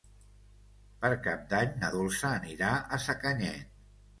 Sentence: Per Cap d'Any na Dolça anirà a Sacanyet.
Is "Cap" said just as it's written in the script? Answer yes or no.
yes